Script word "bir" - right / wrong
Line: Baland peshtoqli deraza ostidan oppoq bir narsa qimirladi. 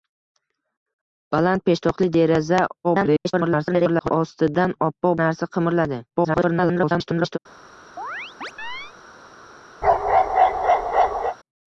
wrong